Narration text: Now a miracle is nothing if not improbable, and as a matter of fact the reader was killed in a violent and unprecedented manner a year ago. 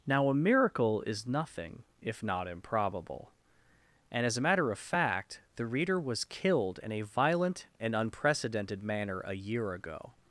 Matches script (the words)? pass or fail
pass